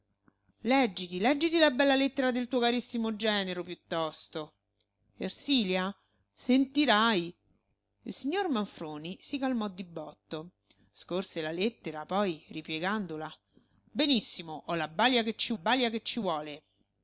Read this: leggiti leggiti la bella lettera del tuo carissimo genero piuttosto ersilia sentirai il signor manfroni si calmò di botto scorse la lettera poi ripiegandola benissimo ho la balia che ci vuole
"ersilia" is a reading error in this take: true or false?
false